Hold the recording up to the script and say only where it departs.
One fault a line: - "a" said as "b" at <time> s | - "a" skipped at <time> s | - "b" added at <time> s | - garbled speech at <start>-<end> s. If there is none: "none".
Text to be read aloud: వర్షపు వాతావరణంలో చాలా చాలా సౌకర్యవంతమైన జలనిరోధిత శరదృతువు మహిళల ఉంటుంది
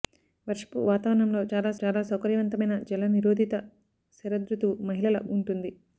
none